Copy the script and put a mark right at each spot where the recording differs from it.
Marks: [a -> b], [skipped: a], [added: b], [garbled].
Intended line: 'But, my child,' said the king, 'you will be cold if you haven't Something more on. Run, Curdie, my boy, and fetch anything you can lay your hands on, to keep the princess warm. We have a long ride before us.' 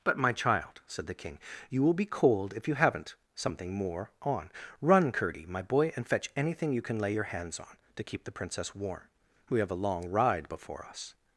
'But, my child,' said the king, 'you will be cold if you haven't Something more on. Run, Curdie, my boy, and fetch anything you can lay your hands on, to keep the princess warm. We have a long ride before us.'